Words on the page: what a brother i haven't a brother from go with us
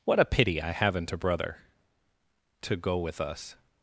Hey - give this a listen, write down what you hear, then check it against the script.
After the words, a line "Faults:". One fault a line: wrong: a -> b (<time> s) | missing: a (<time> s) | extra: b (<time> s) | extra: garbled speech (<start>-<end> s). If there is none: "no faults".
what a pity i haven't a brother to go with us
Faults:
wrong: brother -> pity (0.2 s)
wrong: from -> to (2.6 s)